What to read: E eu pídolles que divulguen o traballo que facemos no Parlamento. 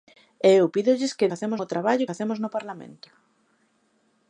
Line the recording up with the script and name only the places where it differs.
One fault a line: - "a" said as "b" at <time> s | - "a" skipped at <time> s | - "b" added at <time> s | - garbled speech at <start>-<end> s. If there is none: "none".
- "divulguen" said as "facemos" at 1.3 s
- "que" skipped at 2.1 s